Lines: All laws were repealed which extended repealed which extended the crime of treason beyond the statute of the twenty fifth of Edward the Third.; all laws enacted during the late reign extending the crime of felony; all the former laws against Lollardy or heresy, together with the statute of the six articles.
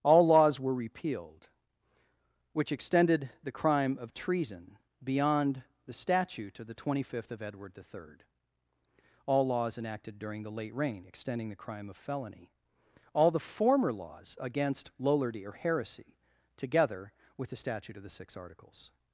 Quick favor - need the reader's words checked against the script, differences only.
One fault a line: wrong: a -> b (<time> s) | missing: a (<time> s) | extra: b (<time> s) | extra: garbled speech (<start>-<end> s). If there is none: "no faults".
missing: repealed which extended (3.3 s)